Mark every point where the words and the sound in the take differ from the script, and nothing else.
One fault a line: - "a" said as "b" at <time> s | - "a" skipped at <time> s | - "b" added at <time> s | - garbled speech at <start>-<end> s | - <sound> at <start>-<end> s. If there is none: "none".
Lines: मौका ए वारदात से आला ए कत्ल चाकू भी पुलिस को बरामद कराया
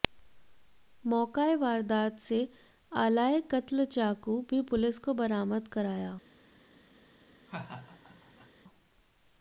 - laugh at 7.5-8.5 s